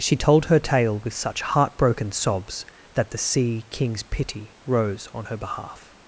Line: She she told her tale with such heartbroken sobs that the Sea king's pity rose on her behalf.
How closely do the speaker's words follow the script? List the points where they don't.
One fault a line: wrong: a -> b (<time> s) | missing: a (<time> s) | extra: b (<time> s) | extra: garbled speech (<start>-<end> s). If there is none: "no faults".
missing: she (0.2 s)